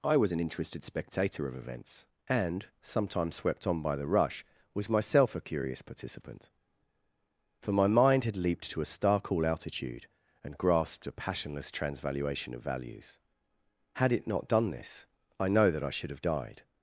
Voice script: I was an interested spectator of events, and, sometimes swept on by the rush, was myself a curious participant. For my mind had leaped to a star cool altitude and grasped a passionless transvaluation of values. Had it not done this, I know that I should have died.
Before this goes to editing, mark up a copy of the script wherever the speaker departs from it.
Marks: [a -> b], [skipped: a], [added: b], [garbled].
I was an interested spectator of events, and, sometimes swept on by the rush, was myself a curious participant. For my mind had leaped to a star cool altitude and grasped a passionless transvaluation of values. Had it not done this, I know that I should have died.